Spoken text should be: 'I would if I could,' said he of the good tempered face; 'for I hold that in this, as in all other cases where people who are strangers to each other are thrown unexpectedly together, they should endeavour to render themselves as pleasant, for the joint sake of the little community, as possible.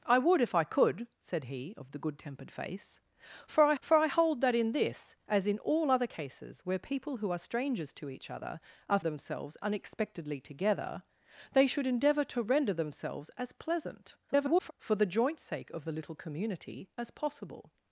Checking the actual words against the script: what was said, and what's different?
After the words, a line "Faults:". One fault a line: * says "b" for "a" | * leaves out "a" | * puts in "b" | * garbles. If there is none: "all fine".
'I would if I could,' said he of the good tempered face; 'for I for I hold that in this, as in all other cases where people who are strangers to each other are themselves unexpectedly together, they should endeavour to render themselves as pleasant, [garbled] for the joint sake of the little community, as possible.
Faults:
* puts in "for I"
* says "themselves" for "thrown"
* garbles